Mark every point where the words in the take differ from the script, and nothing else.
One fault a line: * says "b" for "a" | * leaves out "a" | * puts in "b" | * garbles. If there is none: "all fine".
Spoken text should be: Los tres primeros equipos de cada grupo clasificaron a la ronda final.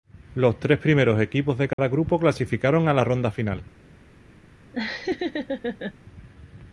all fine